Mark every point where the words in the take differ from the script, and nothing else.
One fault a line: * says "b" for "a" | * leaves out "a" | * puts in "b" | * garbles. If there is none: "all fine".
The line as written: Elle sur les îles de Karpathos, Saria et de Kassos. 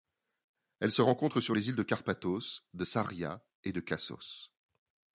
* puts in "se rencontre"
* puts in "de"